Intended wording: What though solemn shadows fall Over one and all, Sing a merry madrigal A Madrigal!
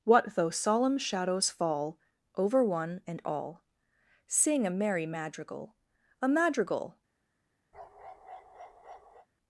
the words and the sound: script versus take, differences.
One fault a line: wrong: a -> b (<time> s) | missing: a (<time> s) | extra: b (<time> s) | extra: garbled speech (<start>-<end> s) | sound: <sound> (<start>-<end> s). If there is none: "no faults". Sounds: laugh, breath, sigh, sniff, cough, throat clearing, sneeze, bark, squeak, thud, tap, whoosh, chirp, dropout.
sound: bark (7.7-9.3 s)